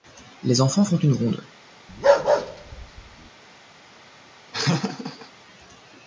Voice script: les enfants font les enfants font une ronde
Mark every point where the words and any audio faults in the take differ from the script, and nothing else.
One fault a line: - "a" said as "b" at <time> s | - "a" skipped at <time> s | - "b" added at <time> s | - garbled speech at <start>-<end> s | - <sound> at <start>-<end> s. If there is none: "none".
- "les enfants font" skipped at 0.9 s
- bark at 1.9-3.3 s
- laugh at 4.5-5.3 s